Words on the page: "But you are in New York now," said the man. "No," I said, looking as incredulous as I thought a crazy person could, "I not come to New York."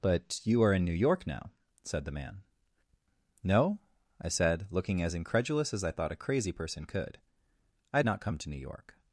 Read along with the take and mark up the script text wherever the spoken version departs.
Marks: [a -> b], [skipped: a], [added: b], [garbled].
"But you are in New York now," said the man. "No," I said, looking as incredulous as I thought a crazy person could, "I not come to New York."